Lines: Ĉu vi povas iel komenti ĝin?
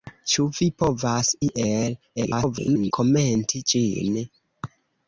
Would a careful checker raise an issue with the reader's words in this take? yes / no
yes